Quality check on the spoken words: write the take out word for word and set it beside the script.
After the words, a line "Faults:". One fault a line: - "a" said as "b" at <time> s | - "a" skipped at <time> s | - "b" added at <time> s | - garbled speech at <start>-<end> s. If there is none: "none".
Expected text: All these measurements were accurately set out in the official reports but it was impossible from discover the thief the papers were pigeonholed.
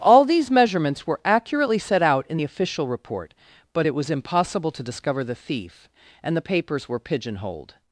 All these measurements were accurately set out in the official report but it was impossible to discover the thief and the papers were pigeonholed.
Faults:
- "reports" said as "report" at 2.9 s
- "from" said as "to" at 4.7 s
- "and" added at 6.2 s